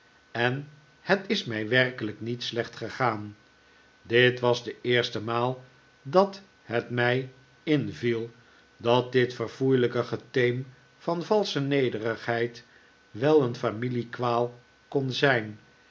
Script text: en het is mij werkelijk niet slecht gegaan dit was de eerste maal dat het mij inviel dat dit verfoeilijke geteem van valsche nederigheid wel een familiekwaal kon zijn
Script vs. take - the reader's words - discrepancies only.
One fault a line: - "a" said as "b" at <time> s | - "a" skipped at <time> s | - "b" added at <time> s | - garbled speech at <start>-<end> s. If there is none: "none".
none